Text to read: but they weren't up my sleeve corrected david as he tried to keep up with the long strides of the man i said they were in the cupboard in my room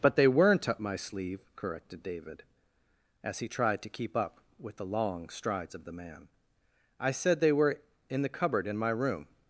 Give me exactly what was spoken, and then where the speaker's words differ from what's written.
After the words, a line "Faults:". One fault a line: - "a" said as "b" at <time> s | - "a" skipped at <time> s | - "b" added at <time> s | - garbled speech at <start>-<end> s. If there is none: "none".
but they weren't up my sleeve corrected david as he tried to keep up with the long strides of the man i said they were in the cupboard in my room
Faults:
none